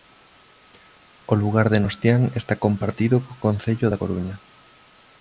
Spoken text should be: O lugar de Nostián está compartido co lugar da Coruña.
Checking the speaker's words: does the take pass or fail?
fail